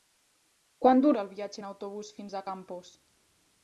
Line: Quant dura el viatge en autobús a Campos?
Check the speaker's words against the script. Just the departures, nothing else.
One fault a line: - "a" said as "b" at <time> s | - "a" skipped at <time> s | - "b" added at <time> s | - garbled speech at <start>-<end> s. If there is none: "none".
- "fins" added at 2.2 s